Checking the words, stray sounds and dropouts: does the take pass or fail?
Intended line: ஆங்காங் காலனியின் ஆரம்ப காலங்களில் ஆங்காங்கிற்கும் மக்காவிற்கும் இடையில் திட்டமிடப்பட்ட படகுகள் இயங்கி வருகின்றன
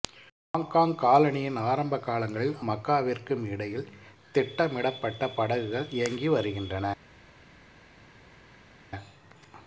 fail